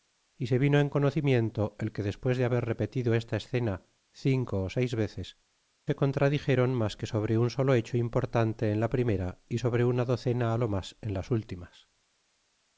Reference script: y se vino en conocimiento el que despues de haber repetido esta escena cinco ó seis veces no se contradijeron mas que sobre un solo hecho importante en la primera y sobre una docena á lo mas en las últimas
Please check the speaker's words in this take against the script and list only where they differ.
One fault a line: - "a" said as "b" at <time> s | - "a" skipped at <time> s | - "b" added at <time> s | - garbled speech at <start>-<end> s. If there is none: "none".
- "no" skipped at 5.3 s